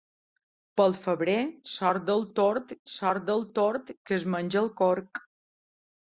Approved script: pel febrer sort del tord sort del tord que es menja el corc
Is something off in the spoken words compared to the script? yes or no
no